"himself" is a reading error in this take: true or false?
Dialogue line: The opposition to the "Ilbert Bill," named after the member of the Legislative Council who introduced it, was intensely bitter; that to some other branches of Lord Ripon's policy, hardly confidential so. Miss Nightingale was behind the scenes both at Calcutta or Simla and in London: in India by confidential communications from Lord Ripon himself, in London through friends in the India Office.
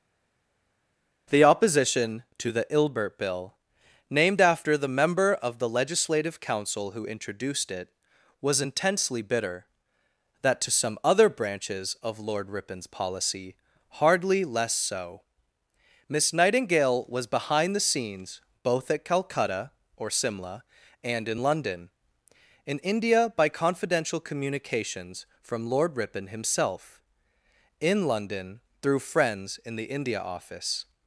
false